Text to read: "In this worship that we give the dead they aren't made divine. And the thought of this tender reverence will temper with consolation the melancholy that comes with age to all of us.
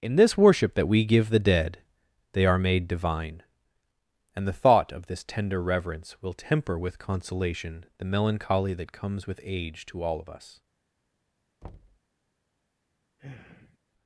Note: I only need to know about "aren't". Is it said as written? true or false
false